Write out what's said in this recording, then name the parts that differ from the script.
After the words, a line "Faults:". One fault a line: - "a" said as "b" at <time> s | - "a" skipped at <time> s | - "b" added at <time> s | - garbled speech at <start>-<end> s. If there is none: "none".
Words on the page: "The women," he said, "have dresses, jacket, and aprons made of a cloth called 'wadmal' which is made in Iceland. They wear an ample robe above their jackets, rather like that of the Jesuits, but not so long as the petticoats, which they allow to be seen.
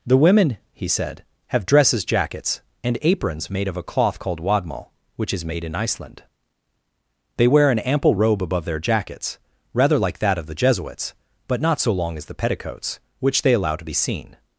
"The women," he said, "have dresses, jackets, and aprons made of a cloth called 'wadmal' which is made in Iceland. They wear an ample robe above their jackets, rather like that of the Jesuits, but not so long as the petticoats, which they allow to be seen.
Faults:
- "jacket" said as "jackets" at 2.0 s